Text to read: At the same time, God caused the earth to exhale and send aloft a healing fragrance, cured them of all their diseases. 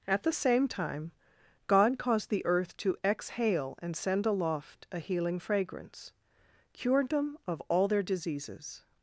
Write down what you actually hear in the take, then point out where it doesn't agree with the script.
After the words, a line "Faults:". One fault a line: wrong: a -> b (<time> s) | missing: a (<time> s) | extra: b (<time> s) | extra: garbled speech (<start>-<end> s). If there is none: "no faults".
At the same time, God caused the earth to exhale and send aloft a healing fragrance, cured them of all their diseases.
Faults:
no faults